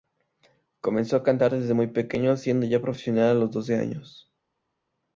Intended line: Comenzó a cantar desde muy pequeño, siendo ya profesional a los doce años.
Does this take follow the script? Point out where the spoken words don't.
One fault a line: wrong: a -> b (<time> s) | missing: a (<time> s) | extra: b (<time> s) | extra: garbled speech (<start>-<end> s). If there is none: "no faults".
no faults